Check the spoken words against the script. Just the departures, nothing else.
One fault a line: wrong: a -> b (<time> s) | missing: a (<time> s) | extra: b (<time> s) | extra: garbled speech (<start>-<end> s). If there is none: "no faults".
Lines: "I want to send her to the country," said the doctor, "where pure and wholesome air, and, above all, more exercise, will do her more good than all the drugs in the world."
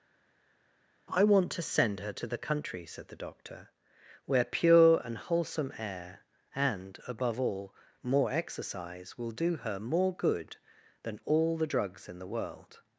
no faults